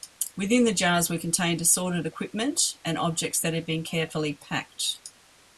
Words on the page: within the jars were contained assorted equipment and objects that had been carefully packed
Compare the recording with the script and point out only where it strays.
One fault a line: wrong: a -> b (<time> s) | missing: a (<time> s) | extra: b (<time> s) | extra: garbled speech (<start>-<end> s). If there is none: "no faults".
no faults